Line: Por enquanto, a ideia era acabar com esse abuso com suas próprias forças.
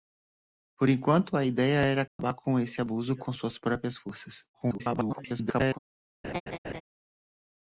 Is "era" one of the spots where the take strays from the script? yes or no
no